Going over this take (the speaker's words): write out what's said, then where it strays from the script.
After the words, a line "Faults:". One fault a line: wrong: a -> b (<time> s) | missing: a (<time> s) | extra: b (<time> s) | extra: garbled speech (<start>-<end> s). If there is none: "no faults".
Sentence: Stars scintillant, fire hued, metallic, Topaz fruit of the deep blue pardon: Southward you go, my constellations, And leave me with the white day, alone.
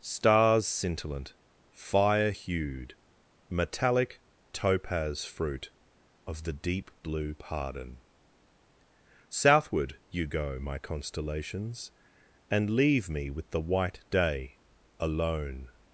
Stars scintillant, fire hued, metallic, Topaz fruit of the deep blue pardon: Southward you go, my constellations, And leave me with the white day, alone.
Faults:
no faults